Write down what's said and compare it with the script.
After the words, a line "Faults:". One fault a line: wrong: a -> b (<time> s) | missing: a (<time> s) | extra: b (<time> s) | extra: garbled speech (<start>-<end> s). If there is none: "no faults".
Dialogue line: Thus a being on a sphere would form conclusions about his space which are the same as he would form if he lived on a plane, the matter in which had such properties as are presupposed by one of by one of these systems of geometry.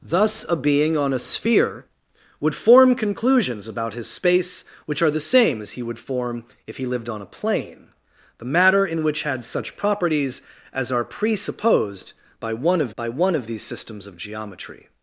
Thus a being on a sphere would form conclusions about his space which are the same as he would form if he lived on a plane, the matter in which had such properties as are presupposed by one of by one of these systems of geometry.
Faults:
no faults